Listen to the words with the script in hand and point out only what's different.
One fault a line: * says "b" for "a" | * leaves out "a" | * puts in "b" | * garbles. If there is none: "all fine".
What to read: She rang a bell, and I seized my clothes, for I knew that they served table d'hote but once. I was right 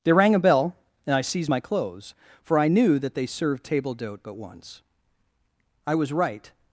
* says "They" for "She"